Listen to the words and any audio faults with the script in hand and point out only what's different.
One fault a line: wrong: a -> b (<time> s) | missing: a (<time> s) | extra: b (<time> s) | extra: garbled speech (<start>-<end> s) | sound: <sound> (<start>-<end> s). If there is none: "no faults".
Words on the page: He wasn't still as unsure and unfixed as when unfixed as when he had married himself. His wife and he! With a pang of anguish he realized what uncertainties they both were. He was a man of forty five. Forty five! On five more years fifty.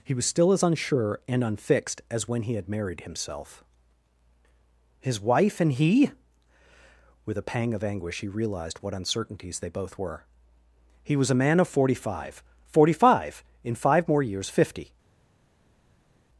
wrong: wasn't -> was (0.1 s)
missing: unfixed as when (2.4 s)
wrong: On -> In (13.6 s)